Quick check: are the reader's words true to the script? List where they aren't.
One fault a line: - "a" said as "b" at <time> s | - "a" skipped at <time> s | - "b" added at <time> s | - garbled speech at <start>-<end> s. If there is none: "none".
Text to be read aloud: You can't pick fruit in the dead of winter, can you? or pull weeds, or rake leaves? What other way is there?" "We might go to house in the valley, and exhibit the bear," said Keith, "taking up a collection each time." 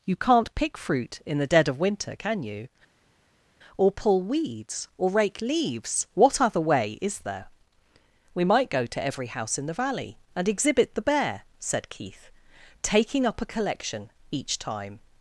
- "every" added at 9.0 s